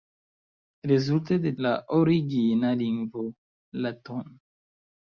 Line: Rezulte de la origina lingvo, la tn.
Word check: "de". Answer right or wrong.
right